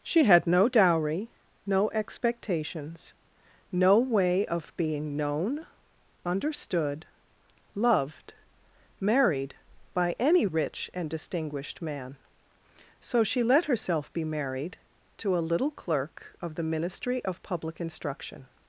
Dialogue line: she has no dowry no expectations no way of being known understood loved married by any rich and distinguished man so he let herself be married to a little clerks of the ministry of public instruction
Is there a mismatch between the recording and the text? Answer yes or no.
yes